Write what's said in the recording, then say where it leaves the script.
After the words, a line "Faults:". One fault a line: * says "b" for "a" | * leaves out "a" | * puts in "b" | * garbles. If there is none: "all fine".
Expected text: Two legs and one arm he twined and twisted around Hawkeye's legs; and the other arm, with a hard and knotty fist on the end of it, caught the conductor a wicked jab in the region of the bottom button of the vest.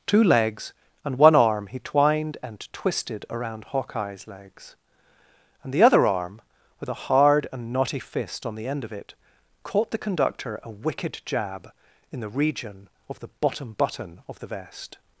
Two legs and one arm he twined and twisted around Hawkeye's legs; and the other arm, with a hard and knotty fist on the end of it, caught the conductor a wicked jab in the region of the bottom button of the vest.
Faults:
all fine